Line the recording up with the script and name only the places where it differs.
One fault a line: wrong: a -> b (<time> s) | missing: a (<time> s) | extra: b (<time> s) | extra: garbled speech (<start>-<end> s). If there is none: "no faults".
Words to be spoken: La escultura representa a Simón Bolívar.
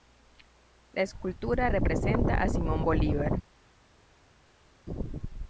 no faults